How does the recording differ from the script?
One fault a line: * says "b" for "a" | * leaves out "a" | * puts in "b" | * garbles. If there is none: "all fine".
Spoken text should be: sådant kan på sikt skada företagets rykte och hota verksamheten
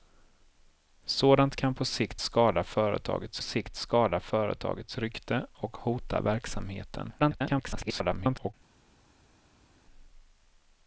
* puts in "sikt skada företagets"
* garbles